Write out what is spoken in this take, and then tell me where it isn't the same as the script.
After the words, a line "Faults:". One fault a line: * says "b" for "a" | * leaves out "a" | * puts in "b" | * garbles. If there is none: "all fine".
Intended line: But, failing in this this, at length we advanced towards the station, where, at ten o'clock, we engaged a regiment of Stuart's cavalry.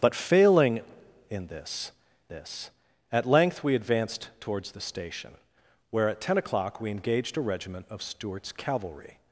But, failing in this this, at length we advanced towards the station, where, at ten o'clock, we engaged a regiment of Stuart's cavalry.
Faults:
all fine